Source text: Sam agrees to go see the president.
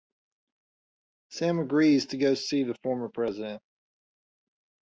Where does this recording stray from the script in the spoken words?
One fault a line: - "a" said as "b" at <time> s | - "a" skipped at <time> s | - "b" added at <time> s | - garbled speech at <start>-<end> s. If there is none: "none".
- "former" added at 2.8 s